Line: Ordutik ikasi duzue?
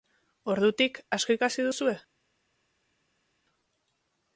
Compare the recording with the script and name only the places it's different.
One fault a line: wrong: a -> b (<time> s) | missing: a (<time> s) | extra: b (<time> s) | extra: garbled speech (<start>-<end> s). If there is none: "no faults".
extra: asko (1.2 s)